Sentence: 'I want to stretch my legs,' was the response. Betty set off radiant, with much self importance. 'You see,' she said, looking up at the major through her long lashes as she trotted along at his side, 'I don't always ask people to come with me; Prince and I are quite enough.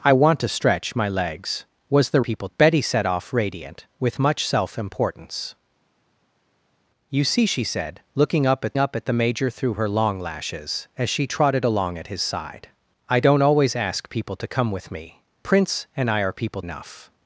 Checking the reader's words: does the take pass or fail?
fail